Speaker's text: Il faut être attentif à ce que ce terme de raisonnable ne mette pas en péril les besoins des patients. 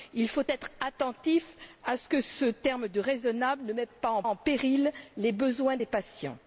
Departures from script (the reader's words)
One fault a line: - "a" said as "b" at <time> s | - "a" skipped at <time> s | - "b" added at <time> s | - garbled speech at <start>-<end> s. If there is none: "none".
- "en" added at 4.2 s